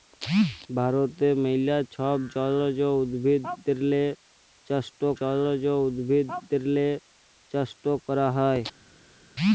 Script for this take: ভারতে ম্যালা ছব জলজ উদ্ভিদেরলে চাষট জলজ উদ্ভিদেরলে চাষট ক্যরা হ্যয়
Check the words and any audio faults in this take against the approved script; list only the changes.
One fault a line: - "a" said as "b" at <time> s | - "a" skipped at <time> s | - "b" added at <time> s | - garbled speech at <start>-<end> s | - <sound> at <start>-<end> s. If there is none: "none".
none